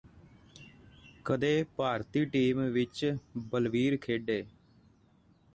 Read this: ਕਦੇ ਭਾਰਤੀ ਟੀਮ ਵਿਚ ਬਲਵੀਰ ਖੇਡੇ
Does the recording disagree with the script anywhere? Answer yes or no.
no